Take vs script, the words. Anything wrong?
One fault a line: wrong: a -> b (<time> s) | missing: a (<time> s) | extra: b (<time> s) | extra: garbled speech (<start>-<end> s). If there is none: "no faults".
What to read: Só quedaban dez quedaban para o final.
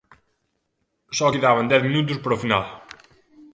wrong: quedaban -> minutos (1.9 s)